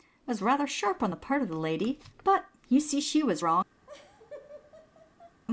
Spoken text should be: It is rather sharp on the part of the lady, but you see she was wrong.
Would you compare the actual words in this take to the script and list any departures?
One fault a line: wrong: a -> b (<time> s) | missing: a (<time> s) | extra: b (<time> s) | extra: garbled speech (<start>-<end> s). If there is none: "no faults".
wrong: is -> was (0.3 s)